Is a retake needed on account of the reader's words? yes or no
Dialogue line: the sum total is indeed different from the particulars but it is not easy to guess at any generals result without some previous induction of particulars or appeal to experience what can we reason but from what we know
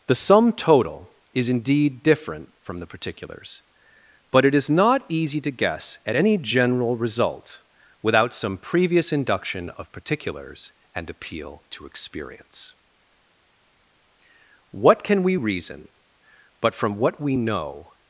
yes